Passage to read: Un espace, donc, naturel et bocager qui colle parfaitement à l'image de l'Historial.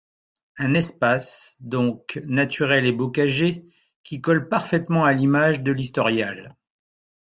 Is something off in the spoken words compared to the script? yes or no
no